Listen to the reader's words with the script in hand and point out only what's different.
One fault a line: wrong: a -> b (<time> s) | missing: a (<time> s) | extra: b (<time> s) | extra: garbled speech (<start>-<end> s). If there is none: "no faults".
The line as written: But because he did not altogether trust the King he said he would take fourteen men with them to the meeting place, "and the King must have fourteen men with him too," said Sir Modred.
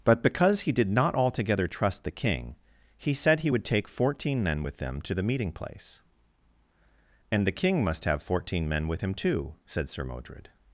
no faults